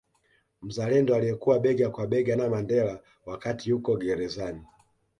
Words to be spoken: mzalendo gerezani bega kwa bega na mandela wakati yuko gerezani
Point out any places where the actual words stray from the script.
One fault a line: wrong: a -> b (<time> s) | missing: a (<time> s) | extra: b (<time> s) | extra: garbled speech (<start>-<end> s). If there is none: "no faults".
wrong: gerezani -> aliyekuwa (1.1 s)